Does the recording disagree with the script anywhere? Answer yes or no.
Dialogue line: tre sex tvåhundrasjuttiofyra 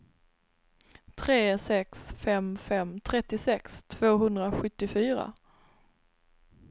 yes